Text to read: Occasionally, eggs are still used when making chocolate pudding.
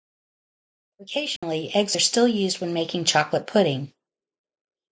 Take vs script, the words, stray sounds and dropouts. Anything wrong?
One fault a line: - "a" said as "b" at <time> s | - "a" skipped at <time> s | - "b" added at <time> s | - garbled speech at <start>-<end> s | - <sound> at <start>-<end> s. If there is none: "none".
- dropout at 1.4-1.4 s